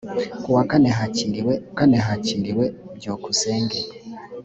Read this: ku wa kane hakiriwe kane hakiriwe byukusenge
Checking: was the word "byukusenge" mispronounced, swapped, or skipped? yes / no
no